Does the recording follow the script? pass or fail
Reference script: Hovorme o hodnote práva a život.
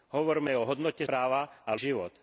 pass